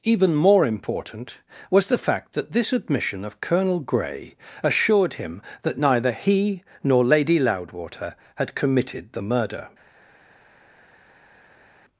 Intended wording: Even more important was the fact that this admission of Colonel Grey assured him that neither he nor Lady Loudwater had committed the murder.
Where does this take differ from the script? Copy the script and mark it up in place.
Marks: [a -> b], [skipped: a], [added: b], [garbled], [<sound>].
Even more important was the fact that this admission of Colonel Grey assured him that neither he nor Lady Loudwater had committed the murder.